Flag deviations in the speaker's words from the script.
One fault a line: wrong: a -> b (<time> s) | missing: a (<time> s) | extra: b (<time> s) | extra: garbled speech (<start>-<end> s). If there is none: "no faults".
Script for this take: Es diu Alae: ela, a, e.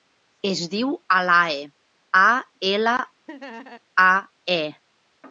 extra: a (2.2 s)